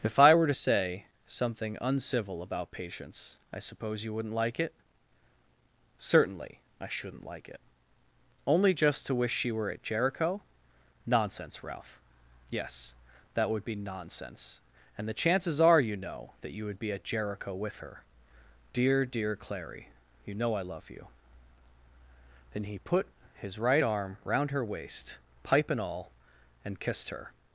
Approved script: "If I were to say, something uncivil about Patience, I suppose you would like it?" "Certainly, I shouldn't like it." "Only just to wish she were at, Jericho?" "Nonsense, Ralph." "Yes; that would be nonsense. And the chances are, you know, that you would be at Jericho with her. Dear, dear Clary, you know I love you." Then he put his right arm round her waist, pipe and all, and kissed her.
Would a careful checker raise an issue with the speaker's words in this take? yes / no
yes